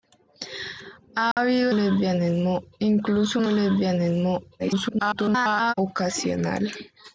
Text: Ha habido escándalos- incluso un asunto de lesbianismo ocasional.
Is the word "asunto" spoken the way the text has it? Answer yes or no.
no